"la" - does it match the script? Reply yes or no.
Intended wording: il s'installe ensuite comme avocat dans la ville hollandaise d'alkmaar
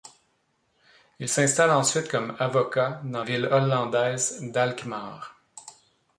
no